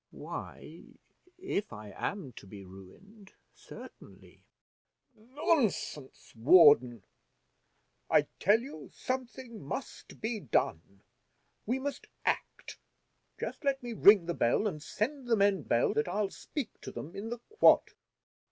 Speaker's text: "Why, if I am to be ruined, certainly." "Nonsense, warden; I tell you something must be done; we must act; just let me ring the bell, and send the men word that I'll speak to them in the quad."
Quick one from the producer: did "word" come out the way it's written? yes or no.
no